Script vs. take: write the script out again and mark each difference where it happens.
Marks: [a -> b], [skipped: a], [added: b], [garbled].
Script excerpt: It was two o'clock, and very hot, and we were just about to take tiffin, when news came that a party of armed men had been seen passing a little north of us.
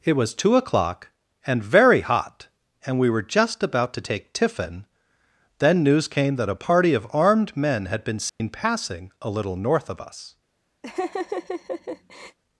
It was two o'clock, and very hot, and we were just about to take tiffin, [when -> then] news came that a party of armed men had been seen passing a little north of us.